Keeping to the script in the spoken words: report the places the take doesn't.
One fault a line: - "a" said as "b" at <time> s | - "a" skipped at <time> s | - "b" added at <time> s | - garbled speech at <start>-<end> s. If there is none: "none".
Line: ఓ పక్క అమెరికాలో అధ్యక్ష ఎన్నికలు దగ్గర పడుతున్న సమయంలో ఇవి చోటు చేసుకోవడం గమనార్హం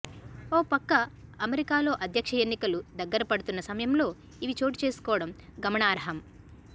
none